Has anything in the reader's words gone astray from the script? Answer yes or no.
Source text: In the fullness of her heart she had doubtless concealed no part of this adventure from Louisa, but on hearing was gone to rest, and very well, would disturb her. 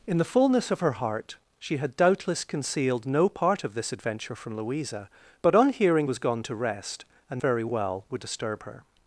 no